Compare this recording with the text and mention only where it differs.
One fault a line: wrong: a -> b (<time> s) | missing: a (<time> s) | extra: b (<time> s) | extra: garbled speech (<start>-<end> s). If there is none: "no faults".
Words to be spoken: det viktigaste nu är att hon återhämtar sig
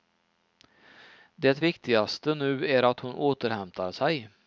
no faults